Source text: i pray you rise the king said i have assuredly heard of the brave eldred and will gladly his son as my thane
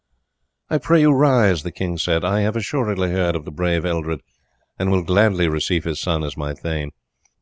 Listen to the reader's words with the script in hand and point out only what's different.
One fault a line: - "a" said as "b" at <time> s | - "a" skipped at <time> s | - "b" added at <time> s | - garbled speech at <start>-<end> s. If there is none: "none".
- "receive" added at 5.5 s